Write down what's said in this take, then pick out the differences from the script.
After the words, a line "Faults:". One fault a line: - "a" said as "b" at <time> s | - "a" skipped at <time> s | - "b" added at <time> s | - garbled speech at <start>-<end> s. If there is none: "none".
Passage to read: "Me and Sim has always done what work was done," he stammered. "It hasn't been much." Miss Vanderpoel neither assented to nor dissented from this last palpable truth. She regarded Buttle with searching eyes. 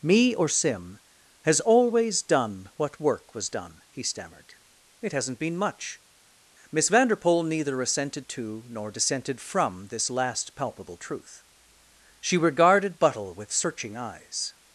"Me or Sim has always done what work was done," he stammered. "It hasn't been much." Miss Vanderpoel neither assented to nor dissented from this last palpable truth. She regarded Buttle with searching eyes.
Faults:
- "and" said as "or" at 0.3 s